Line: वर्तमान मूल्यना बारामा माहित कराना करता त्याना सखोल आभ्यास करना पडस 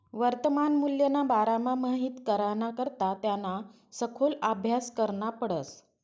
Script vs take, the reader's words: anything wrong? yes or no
no